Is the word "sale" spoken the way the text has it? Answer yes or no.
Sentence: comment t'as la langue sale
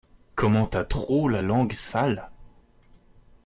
yes